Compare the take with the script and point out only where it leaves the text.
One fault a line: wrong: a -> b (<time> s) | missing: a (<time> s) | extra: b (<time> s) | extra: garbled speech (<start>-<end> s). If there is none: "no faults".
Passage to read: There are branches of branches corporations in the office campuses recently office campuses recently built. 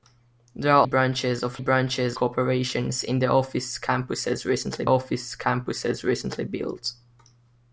no faults